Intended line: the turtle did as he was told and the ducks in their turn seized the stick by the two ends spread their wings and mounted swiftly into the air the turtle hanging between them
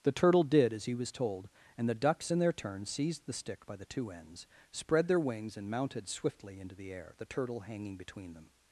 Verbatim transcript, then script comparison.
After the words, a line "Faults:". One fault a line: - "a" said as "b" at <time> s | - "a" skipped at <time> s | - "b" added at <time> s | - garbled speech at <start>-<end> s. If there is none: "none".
the turtle did as he was told and the ducks in their turn seized the stick by the two ends spread their wings and mounted swiftly into the air the turtle hanging between them
Faults:
none